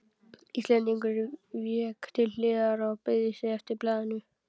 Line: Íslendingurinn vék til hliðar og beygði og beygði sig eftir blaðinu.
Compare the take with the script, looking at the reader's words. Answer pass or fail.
fail